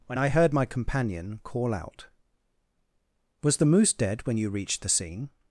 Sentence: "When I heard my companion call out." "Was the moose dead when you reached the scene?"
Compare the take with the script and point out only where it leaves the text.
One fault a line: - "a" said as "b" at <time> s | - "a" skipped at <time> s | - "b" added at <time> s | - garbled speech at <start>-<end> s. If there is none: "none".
none